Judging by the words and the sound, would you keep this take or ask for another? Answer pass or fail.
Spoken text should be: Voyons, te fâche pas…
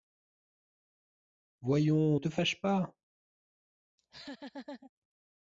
fail